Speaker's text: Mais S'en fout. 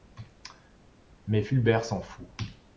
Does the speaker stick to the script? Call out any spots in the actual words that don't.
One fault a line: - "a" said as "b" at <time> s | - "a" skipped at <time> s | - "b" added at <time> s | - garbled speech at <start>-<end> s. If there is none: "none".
- "Fulbert" added at 1.4 s